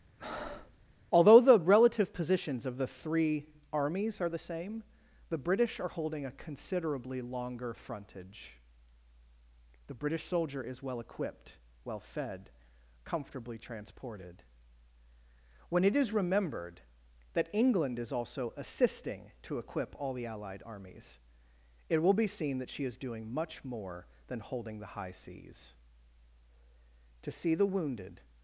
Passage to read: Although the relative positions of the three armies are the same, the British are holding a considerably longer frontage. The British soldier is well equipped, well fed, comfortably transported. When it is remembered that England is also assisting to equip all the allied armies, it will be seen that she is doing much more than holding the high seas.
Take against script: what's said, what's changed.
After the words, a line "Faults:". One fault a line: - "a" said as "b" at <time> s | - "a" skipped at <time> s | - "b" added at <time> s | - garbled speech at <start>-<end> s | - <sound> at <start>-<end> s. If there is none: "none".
Although the relative positions of the three armies are the same, the British are holding a considerably longer frontage. The British soldier is well equipped, well fed, comfortably transported. When it is remembered that England is also assisting to equip all the allied armies, it will be seen that she is doing much more than holding the high seas. To see the wounded
Faults:
- breath at 0.2-0.8 s
- "To see the wounded" added at 27.2 s